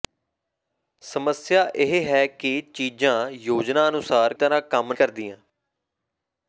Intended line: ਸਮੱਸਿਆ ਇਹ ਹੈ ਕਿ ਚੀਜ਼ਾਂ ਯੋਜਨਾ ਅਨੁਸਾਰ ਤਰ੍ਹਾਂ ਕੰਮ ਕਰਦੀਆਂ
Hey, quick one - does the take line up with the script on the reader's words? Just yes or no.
yes